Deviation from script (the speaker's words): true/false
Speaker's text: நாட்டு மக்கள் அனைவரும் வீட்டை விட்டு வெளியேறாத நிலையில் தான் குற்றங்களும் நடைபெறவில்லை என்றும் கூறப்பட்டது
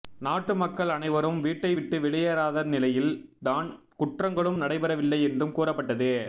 false